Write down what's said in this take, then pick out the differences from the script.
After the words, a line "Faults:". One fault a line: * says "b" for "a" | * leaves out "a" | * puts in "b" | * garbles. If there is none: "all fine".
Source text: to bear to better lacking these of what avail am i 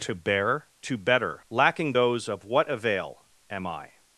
to bear to better lacking those of what avail am i
Faults:
* says "those" for "these"